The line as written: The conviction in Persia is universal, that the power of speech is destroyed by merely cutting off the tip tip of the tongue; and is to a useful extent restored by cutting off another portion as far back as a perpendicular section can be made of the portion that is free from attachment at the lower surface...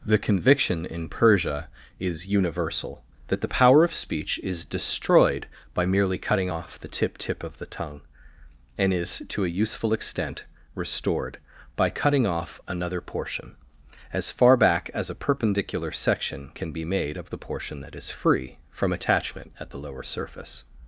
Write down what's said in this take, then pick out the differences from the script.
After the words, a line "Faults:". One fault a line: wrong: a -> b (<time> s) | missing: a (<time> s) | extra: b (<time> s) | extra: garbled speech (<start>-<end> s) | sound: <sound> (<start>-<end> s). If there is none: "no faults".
The conviction in Persia is universal, that the power of speech is destroyed by merely cutting off the tip tip of the tongue; and is to a useful extent restored by cutting off another portion as far back as a perpendicular section can be made of the portion that is free from attachment at the lower surface...
Faults:
no faults